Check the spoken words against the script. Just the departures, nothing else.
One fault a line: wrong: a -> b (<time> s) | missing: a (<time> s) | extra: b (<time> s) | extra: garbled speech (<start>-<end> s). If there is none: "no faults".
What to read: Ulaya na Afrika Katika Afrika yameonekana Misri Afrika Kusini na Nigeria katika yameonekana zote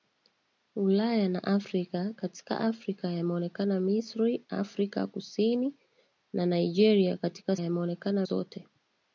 no faults